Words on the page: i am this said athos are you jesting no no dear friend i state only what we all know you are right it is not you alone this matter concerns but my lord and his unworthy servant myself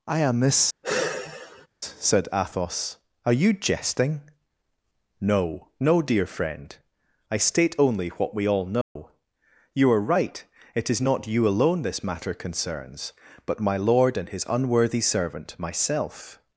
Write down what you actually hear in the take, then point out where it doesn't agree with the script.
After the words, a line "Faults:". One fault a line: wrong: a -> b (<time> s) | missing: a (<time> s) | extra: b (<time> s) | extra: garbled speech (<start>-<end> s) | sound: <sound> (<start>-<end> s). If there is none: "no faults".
i am this said athos are you jesting no no dear friend i state only what we all know you are right it is not you alone this matter concerns but my lord and his unworthy servant myself
Faults:
sound: sigh (0.8-1.7 s)
sound: dropout (8.8-9.0 s)